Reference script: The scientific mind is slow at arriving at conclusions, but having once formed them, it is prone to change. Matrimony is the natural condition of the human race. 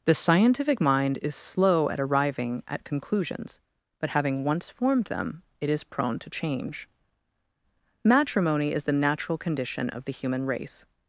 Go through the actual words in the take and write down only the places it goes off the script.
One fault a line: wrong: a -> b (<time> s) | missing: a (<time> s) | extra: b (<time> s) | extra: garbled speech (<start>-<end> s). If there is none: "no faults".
no faults